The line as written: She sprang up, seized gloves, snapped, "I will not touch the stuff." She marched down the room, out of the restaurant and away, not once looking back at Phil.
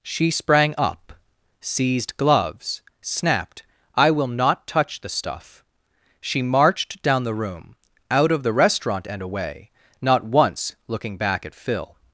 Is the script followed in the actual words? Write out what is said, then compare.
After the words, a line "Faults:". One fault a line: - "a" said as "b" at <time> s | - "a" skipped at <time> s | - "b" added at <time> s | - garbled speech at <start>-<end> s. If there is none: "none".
She sprang up, seized gloves, snapped, "I will not touch the stuff." She marched down the room, out of the restaurant and away, not once looking back at Phil.
Faults:
none